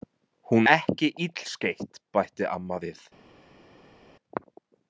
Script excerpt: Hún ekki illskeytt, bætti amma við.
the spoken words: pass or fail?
pass